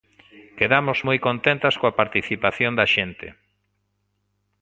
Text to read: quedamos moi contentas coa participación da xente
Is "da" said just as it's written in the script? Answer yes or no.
yes